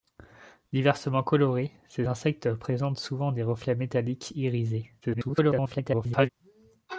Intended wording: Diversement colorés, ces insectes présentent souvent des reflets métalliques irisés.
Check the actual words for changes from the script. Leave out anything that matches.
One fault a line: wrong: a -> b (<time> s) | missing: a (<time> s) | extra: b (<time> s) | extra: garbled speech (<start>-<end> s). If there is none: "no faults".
extra: garbled speech (5.0-6.3 s)